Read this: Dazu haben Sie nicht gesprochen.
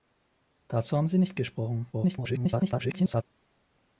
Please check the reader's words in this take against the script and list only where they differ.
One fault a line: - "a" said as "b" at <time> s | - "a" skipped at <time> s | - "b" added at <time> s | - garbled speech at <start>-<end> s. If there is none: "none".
- garbled speech at 1.9-3.2 s